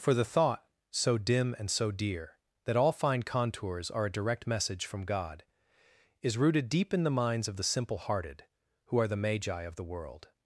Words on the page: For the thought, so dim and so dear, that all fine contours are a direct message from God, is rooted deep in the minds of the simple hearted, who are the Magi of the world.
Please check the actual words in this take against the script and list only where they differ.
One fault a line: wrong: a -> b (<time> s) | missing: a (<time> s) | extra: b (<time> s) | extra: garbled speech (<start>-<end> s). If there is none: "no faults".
no faults